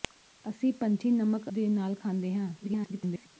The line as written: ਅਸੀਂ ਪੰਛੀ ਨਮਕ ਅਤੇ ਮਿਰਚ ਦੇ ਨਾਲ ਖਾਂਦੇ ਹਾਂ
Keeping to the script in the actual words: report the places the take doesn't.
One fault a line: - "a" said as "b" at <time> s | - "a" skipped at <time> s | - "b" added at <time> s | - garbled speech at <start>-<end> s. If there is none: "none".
- "ਅਤੇ ਮਿਰਚ" skipped at 1.5 s
- garbled speech at 2.6-3.3 s